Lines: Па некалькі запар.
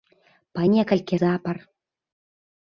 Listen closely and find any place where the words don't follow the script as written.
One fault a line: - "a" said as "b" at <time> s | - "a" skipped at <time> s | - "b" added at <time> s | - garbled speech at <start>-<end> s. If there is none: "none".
none